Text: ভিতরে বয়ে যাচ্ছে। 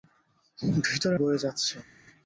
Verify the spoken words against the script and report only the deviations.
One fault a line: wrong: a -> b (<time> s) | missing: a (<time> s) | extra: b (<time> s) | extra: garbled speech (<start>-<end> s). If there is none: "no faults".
no faults